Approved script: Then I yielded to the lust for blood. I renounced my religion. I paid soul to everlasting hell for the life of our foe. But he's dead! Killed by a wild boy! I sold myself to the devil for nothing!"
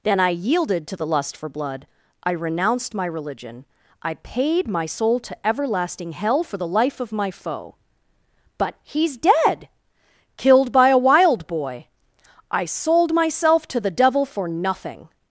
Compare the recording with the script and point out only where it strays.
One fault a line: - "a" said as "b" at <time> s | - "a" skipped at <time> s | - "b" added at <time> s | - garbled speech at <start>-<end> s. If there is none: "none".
- "my" added at 4.7 s
- "our" said as "my" at 7.1 s